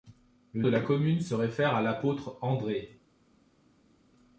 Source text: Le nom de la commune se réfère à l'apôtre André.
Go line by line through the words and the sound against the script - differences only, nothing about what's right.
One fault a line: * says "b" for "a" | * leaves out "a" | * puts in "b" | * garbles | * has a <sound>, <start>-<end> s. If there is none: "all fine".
* leaves out "nom"